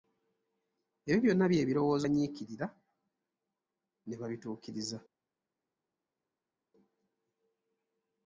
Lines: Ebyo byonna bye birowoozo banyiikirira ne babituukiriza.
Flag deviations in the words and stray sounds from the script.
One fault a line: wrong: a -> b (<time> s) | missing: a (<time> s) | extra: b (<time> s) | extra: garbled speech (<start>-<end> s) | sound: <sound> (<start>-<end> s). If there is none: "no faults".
no faults